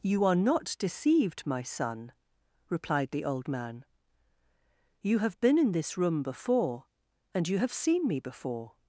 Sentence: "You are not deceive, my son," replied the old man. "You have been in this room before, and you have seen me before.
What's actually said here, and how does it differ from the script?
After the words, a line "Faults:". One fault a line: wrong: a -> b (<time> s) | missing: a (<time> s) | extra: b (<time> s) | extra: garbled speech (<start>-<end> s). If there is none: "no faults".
"You are not deceived, my son," replied the old man. "You have been in this room before, and you have seen me before.
Faults:
wrong: deceive -> deceived (0.8 s)